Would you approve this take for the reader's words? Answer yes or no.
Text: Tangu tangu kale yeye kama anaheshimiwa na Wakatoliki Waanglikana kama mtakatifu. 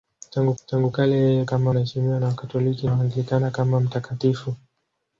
yes